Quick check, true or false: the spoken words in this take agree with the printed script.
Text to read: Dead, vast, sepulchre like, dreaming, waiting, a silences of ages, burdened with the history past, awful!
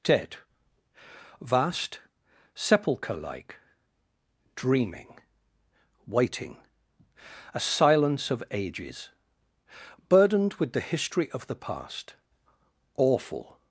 false